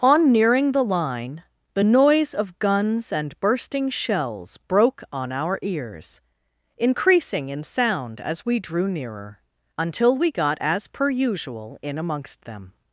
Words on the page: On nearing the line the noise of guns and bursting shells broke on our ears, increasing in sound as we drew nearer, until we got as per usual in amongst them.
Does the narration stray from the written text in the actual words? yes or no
no